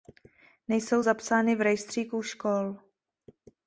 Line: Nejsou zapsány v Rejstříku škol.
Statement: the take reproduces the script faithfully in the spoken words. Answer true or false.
true